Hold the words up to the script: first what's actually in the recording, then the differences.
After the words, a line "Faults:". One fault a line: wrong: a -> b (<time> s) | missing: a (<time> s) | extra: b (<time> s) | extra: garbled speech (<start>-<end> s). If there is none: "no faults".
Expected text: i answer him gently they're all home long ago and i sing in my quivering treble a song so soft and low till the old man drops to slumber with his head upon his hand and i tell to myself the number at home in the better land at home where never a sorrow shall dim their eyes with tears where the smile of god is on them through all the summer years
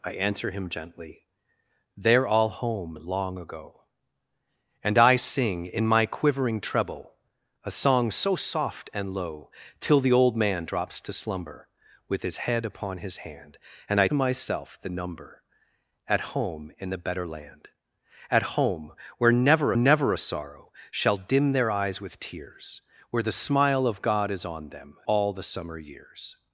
i answer him gently they're all home long ago and i sing in my quivering treble a song so soft and low till the old man drops to slumber with his head upon his hand and i myself the number at home in the better land at home where never never a sorrow shall dim their eyes with tears where the smile of god is on them all the summer years
Faults:
missing: tell to (14.1 s)
extra: never (19.7 s)
missing: through (25.0 s)